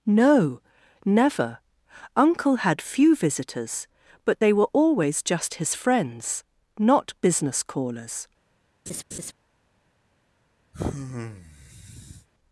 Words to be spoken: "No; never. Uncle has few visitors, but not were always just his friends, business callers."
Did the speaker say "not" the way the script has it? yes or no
no